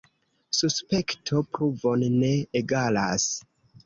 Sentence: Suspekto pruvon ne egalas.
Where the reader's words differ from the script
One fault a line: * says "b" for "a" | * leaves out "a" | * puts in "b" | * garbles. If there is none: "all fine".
all fine